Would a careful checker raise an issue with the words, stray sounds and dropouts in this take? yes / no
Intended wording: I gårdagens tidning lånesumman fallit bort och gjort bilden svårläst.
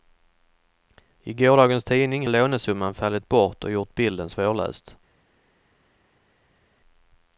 no